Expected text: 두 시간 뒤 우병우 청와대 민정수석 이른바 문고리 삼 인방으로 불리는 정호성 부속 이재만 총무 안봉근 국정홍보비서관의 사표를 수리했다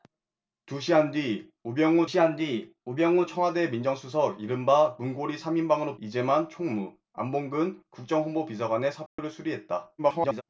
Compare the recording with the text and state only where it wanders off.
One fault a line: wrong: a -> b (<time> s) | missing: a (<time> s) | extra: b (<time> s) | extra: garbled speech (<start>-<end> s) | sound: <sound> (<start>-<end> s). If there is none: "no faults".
extra: 시간 뒤 우병우 (2.1 s)
missing: 불리는 정호성 부속 (6.0 s)
sound: dropout (9.1-9.2 s)
extra: garbled speech (10.0-10.4 s)